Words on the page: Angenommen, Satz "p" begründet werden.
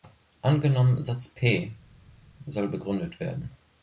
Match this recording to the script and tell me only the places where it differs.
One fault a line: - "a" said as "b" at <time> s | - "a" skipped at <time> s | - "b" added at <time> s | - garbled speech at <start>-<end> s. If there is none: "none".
- "soll" added at 2.5 s